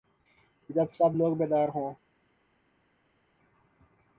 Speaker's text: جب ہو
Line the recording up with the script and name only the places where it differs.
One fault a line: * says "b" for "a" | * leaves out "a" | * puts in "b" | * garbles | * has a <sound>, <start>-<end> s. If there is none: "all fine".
* puts in "سب لوگ بیدار"